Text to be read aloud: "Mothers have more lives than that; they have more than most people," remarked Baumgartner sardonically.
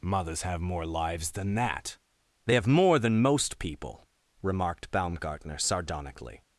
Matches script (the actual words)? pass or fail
pass